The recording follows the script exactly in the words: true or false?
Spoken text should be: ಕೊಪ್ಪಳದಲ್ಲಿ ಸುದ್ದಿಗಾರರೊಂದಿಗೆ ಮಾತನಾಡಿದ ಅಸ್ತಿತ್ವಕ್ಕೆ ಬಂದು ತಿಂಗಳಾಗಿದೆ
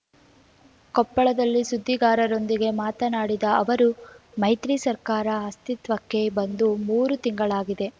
false